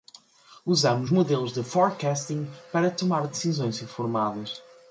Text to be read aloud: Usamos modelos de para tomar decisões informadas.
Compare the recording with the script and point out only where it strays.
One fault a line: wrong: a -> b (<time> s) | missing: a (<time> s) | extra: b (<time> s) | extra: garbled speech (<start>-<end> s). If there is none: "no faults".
extra: forecasting (1.6 s)